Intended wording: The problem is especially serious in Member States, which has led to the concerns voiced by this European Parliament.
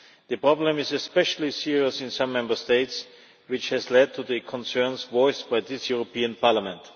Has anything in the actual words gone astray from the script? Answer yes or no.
yes